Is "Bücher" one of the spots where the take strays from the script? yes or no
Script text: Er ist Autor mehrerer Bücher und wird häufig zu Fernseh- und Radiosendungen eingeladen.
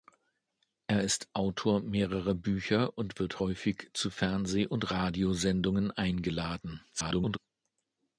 no